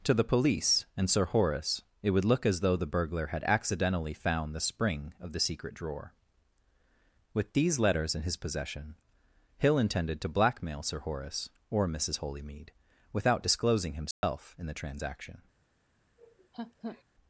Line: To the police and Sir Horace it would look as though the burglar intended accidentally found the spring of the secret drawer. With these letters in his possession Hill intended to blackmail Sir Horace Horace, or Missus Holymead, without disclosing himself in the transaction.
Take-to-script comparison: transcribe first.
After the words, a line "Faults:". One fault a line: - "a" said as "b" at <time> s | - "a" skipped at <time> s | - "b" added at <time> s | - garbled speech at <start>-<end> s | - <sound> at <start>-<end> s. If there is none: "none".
To the police and Sir Horace it would look as though the burglar had accidentally found the spring of the secret drawer. With these letters in his possession Hill intended to blackmail Sir Horace, or Missus Holymead, without disclosing himself in the transaction.
Faults:
- "intended" said as "had" at 3.3 s
- "Horace" skipped at 11.5 s
- dropout at 14.1-14.2 s
- laugh at 16.2-17.0 s